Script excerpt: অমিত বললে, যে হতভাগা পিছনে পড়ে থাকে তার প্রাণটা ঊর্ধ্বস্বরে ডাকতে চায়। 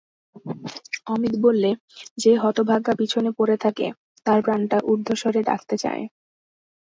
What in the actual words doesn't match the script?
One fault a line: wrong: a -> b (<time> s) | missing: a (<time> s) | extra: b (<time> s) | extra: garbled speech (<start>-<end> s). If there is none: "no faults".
no faults